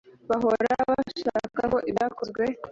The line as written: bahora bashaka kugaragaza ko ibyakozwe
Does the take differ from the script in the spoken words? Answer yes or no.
yes